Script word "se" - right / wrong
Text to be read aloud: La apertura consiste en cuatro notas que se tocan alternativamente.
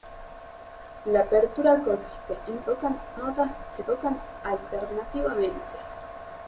wrong